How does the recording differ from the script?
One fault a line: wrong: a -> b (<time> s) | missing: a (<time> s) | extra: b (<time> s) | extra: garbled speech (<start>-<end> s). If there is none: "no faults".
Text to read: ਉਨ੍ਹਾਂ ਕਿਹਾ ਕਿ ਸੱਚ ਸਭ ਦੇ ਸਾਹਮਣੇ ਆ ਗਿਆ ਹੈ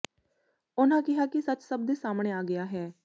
no faults